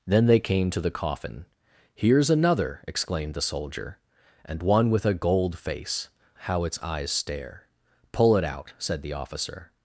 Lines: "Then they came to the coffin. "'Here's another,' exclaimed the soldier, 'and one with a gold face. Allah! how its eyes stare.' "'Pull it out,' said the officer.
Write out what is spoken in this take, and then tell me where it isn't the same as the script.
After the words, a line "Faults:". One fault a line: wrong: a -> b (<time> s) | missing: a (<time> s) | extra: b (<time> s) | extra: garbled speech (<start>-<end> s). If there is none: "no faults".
"Then they came to the coffin. "'Here's another,' exclaimed the soldier, 'and one with a gold face! How its eyes stare.' "'Pull it out,' said the officer.
Faults:
missing: Allah (6.1 s)